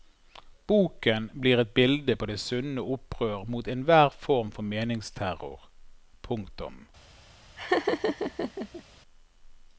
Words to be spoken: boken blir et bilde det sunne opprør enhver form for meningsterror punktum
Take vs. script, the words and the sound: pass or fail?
fail